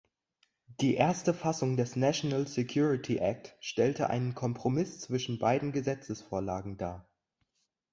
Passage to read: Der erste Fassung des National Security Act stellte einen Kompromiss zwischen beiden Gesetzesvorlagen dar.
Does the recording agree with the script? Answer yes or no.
no